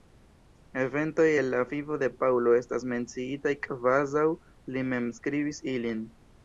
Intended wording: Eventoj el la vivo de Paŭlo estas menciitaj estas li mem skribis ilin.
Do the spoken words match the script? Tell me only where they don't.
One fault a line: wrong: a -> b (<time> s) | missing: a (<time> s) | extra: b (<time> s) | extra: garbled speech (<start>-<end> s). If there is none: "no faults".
wrong: estas -> kvazaŭ (3.7 s)